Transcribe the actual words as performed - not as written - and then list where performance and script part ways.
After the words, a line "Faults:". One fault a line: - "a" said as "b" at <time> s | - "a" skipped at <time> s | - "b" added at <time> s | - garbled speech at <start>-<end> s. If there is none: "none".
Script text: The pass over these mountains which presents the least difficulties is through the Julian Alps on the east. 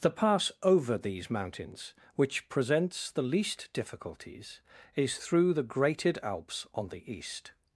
The pass over these mountains which presents the least difficulties is through the Grated Alps on the east.
Faults:
- "Julian" said as "Grated" at 5.6 s